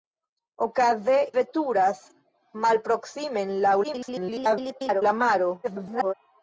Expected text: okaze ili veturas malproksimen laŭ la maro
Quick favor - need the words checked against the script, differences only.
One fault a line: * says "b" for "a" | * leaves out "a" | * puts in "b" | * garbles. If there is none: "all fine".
* leaves out "ili"
* garbles
* garbles